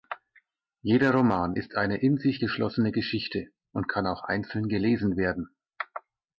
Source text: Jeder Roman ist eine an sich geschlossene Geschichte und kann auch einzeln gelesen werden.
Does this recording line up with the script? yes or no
no